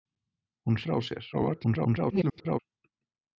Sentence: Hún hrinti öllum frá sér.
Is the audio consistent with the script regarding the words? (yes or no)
no